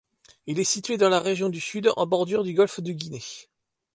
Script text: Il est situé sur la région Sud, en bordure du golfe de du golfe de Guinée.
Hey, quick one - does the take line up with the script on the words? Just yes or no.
no